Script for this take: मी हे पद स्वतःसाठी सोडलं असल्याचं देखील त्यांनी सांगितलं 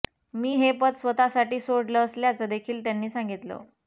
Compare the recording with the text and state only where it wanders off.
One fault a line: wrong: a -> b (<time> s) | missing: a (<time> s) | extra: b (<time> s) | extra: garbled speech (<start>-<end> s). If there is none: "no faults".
no faults